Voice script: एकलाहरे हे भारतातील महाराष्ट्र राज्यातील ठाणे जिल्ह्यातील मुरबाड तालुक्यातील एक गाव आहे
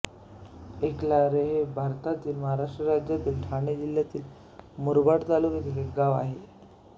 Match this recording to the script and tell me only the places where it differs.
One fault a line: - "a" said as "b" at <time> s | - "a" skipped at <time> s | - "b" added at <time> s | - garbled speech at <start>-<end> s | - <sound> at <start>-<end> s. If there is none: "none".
none